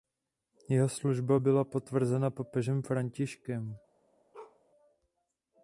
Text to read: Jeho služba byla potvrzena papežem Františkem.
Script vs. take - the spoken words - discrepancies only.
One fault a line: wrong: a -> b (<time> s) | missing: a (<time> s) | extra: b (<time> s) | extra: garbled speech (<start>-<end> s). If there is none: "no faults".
no faults